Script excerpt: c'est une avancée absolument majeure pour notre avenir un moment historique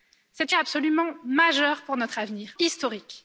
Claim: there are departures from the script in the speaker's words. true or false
true